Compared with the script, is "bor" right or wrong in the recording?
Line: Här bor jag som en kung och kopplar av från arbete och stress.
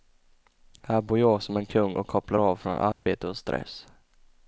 right